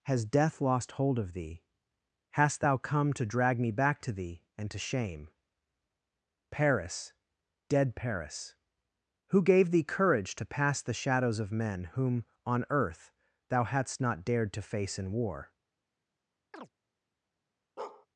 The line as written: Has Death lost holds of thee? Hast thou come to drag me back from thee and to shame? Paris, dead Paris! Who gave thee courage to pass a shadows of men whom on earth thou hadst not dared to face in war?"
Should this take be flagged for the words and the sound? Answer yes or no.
yes